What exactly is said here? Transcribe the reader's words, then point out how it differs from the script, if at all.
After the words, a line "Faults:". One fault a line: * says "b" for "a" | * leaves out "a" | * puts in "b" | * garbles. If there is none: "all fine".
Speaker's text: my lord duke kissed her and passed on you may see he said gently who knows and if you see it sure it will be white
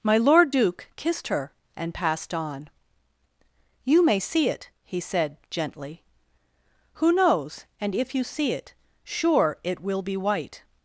my lord duke kissed her and passed on you may see it he said gently who knows and if you see it sure it will be white
Faults:
* puts in "it"